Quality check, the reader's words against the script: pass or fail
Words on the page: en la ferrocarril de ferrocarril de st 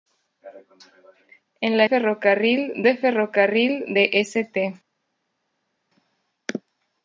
pass